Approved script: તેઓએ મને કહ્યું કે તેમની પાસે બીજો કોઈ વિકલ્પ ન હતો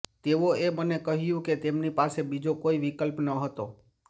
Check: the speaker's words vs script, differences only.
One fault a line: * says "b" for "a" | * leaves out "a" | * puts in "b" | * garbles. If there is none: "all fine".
all fine